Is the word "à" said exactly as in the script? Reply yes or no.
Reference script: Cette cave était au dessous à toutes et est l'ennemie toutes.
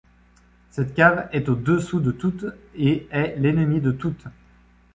no